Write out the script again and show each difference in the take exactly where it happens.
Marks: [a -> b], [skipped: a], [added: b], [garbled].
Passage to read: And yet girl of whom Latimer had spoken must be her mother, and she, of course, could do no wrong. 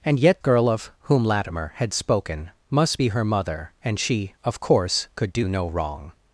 And yet girl of whom Latimer had spoken must be her mother, and she, of course, could do no wrong.